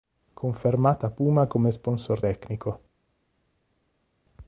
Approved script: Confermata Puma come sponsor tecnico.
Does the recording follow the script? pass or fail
pass